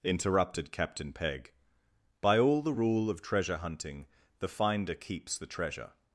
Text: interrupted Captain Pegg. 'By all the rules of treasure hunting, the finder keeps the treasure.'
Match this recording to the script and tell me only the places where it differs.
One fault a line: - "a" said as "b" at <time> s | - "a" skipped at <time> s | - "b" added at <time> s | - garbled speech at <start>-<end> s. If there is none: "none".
- "rules" said as "rule" at 2.7 s